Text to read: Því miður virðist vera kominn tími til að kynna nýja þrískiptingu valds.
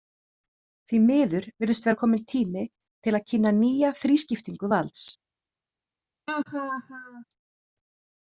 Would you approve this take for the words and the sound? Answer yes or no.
no